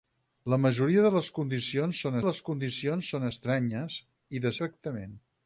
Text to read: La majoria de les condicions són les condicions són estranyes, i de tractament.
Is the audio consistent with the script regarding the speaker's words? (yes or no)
yes